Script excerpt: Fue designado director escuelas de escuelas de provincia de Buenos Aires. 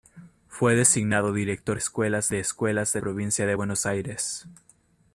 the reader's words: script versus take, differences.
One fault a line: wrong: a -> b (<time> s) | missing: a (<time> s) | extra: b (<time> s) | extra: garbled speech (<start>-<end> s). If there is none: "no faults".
no faults